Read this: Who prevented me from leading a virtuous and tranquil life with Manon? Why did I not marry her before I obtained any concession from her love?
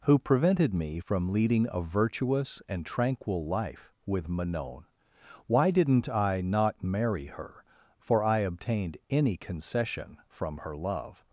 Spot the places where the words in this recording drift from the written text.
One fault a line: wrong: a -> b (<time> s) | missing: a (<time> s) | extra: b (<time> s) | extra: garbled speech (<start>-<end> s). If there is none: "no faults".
wrong: did -> didn't (5.7 s)
wrong: before -> for (8.0 s)